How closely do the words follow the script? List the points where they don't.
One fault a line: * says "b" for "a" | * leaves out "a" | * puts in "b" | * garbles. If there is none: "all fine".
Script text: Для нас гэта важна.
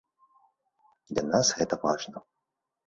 all fine